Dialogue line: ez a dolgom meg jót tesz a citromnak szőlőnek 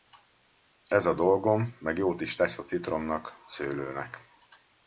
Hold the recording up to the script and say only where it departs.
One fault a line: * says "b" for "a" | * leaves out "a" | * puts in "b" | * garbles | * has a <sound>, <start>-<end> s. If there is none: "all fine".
* puts in "is"